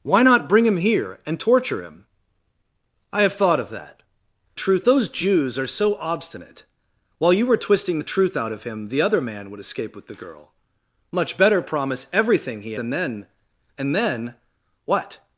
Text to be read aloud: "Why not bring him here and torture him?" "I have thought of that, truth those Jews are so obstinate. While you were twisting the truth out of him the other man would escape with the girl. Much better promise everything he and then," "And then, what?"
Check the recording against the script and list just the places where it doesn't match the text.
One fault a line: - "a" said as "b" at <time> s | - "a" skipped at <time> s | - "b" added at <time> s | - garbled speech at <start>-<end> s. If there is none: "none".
none